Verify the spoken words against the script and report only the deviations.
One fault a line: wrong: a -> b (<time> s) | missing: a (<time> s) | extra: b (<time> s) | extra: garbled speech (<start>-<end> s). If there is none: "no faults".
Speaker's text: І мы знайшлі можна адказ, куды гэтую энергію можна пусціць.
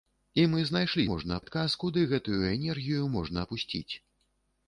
no faults